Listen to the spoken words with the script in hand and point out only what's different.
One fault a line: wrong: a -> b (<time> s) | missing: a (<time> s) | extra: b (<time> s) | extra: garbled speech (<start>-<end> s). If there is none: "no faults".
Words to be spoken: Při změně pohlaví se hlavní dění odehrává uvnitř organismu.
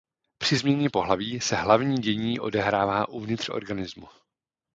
no faults